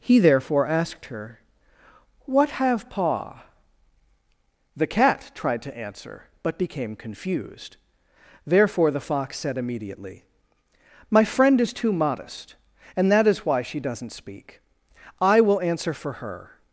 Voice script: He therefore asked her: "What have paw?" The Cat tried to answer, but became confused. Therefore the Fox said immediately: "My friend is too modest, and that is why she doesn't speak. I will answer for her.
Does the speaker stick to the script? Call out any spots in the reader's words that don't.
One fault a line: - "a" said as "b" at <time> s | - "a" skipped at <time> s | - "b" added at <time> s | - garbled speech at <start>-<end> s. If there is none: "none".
none